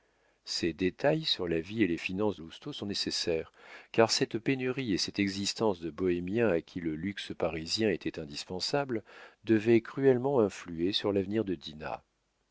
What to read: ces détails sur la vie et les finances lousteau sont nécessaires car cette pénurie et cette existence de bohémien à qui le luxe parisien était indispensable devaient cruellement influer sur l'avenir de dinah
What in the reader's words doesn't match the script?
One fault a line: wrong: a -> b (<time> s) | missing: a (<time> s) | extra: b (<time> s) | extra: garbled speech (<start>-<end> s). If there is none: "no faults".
no faults